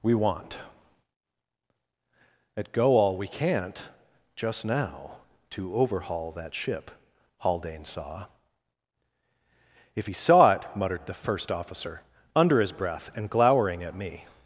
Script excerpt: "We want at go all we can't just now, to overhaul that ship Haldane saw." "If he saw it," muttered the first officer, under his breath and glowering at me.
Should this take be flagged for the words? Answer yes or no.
no